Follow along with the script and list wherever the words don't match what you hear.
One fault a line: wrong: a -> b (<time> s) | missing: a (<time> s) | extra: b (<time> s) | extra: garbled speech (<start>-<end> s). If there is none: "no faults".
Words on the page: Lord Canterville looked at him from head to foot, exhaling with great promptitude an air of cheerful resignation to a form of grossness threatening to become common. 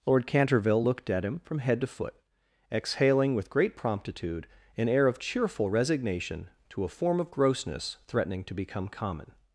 no faults